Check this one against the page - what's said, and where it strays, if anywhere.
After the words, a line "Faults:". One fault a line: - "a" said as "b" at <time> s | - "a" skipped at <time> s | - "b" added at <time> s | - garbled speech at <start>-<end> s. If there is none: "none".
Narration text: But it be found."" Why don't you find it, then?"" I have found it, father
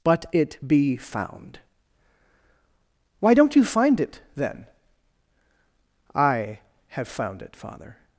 But it be found."" Why don't you find it, then?"" I have found it, father
Faults:
none